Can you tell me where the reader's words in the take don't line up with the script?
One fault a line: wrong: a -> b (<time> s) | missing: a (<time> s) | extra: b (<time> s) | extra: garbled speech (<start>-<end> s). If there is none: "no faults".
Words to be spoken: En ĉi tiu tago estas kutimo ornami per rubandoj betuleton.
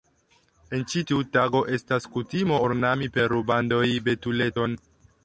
no faults